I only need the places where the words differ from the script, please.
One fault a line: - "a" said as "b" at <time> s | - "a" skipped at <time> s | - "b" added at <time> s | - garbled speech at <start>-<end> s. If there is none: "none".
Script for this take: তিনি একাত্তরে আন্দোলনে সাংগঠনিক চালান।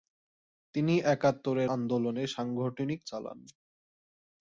none